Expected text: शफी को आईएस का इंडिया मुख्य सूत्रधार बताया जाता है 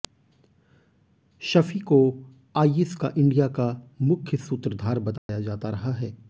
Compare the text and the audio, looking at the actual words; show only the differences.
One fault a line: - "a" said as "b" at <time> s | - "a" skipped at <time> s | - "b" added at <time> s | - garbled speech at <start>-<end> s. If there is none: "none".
- "का" added at 3.5 s
- "रहा" added at 5.7 s